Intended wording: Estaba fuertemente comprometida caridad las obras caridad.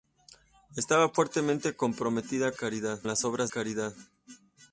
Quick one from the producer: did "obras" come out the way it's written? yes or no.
yes